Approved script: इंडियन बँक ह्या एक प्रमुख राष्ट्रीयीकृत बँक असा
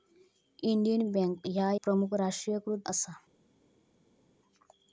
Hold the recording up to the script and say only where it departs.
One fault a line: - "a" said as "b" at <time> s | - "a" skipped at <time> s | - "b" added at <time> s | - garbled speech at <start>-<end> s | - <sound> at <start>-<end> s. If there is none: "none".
- "एक" skipped at 1.7 s
- "बँक" skipped at 2.8 s